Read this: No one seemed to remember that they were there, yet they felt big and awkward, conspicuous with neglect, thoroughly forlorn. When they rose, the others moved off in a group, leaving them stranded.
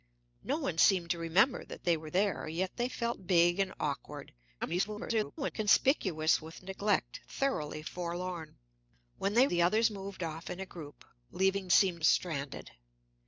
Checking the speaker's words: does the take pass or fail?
fail